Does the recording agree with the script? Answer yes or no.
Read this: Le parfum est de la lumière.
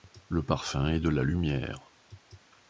yes